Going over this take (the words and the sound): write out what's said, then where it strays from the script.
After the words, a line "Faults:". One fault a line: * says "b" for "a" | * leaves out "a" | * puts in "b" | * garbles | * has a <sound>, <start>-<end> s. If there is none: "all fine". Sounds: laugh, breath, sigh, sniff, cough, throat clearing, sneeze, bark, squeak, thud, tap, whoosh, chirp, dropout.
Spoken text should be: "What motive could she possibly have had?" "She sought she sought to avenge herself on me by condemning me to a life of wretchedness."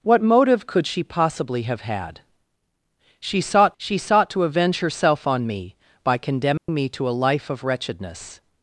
"What motive could she possibly have had?" "She sought she sought to avenge herself on me by condemning me to a life of wretchedness."
Faults:
* has a dropout, 6.6-6.7 s